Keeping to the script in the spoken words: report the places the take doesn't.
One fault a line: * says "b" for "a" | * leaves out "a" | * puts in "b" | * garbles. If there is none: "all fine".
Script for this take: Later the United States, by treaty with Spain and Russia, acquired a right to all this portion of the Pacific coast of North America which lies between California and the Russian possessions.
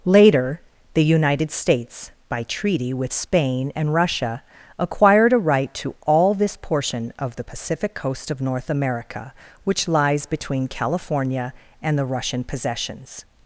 all fine